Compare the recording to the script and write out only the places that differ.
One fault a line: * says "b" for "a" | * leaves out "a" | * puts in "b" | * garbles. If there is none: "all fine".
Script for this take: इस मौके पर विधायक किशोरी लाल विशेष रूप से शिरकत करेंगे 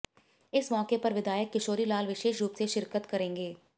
all fine